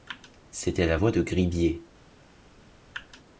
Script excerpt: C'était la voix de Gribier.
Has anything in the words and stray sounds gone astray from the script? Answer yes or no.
no